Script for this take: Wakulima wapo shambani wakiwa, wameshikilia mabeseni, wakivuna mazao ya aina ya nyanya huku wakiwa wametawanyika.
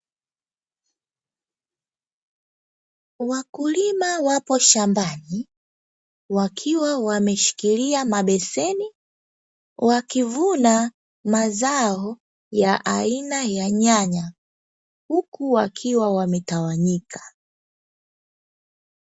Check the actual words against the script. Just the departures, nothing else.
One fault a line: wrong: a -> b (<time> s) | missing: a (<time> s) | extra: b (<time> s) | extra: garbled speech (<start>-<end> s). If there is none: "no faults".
no faults